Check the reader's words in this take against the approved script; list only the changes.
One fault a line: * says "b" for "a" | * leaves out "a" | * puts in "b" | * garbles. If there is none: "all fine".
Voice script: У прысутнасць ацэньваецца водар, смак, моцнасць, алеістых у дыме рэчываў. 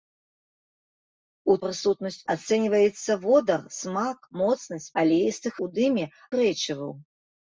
all fine